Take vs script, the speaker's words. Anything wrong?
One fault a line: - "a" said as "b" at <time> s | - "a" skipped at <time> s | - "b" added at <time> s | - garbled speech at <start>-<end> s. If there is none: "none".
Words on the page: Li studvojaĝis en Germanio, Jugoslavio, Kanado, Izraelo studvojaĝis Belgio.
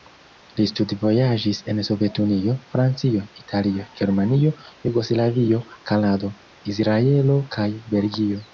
- "Sovetunio Francio Italio" added at 1.9 s
- "studvojaĝis" said as "kaj" at 7.6 s